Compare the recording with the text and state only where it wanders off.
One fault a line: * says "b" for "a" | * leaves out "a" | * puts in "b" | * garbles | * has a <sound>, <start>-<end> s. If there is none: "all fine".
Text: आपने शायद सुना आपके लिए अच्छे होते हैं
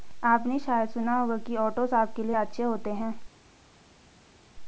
* puts in "होगा कि ओट्स"